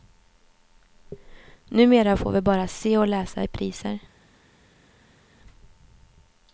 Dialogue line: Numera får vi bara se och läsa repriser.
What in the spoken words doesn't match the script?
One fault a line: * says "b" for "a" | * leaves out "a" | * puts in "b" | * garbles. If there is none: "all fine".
all fine